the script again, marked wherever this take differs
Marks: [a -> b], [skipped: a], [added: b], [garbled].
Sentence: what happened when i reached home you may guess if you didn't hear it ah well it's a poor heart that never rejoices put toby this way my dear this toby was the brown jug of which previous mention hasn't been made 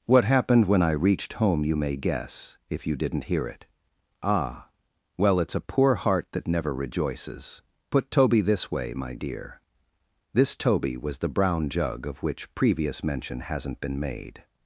what happened when i reached home you may guess if you didn't hear it ah well it's a poor heart that never rejoices put toby this way my dear this toby was the brown jug of which previous mention hasn't been made